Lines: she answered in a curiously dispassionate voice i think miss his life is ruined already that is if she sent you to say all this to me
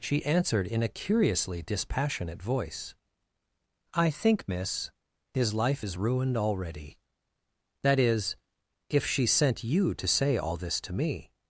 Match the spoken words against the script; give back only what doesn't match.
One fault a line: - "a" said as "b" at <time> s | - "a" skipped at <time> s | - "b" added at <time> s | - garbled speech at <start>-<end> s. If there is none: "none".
none